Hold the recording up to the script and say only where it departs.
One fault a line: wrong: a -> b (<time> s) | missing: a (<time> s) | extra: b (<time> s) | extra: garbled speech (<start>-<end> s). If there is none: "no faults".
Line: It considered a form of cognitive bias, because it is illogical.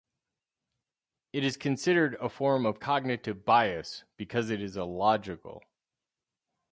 extra: is (1.4 s)